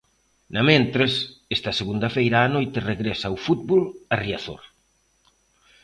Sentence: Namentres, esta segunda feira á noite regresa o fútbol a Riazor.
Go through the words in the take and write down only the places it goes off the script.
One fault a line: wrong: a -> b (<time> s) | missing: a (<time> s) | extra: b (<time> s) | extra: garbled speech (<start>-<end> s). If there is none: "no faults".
no faults